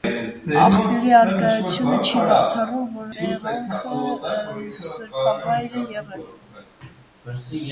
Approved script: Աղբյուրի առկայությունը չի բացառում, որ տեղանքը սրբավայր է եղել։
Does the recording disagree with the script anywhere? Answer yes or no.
no